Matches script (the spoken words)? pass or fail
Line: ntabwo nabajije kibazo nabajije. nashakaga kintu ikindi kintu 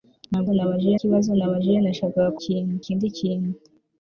pass